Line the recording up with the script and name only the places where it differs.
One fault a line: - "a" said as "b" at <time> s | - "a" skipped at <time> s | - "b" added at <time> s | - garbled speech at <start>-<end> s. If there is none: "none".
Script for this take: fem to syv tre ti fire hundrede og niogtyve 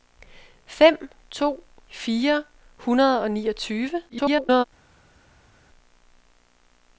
- "syv tre ti" skipped at 1.6 s
- garbled speech at 4.1-4.6 s